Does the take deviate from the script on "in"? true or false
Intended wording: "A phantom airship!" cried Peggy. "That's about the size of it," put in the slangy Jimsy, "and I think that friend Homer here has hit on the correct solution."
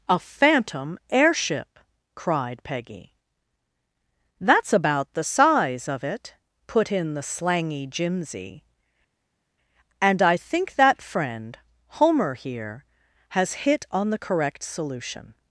false